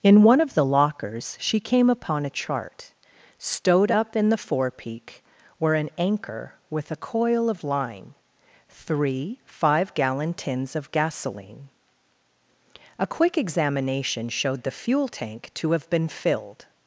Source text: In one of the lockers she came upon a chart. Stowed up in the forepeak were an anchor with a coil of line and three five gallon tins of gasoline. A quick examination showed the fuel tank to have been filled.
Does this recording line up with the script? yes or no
no